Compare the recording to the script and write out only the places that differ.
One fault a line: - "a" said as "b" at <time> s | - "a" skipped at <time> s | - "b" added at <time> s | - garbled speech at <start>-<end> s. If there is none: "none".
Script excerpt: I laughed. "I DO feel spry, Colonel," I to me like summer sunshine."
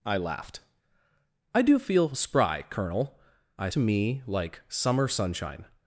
none